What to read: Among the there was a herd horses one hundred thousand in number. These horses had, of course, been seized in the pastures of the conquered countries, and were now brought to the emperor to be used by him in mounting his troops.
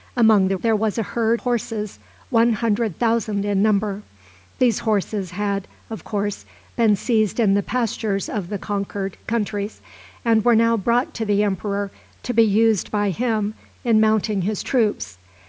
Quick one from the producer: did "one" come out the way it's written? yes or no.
yes